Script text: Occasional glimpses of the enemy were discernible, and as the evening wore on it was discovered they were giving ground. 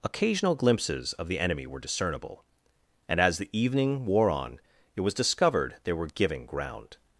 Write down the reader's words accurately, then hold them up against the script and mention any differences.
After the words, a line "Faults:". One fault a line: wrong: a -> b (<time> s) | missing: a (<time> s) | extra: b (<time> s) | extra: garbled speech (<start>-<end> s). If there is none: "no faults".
Occasional glimpses of the enemy were discernible, and as the evening wore on it was discovered they were giving ground.
Faults:
no faults